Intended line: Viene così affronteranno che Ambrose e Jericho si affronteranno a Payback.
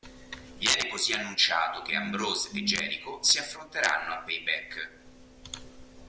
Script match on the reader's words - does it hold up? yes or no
no